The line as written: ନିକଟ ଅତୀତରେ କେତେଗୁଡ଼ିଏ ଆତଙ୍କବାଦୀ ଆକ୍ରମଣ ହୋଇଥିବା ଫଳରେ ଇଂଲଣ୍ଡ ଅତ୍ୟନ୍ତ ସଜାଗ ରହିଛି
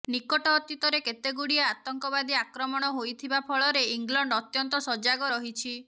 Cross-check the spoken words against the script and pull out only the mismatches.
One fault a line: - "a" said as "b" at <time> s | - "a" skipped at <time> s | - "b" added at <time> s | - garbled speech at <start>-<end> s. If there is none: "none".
none